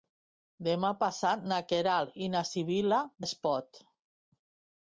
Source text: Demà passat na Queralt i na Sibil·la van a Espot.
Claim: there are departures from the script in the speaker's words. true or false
true